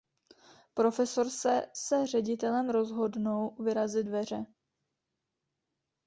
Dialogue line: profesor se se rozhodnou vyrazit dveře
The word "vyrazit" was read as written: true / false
true